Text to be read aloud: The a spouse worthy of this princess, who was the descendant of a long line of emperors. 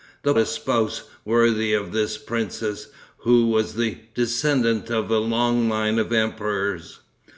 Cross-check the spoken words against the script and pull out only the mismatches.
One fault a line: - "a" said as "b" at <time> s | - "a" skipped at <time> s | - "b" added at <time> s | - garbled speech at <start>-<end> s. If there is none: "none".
none